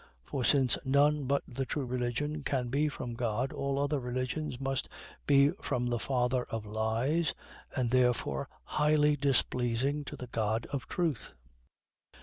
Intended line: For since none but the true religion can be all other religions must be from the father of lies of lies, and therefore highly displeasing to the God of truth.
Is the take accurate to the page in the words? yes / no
no